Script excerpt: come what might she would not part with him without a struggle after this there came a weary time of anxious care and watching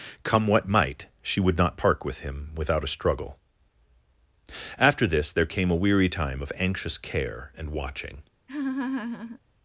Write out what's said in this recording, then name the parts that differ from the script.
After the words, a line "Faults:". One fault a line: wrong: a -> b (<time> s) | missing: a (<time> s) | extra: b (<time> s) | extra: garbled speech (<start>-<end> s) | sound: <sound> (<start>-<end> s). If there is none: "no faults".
come what might she would not park with him without a struggle after this there came a weary time of anxious care and watching
Faults:
wrong: part -> park (1.8 s)
sound: laugh (8.5-9.4 s)